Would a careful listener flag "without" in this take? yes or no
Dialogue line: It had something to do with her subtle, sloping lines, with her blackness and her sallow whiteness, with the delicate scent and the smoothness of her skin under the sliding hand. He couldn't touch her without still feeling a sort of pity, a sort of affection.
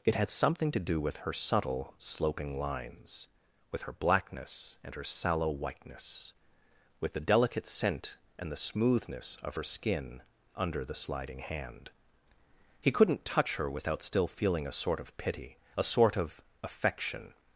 no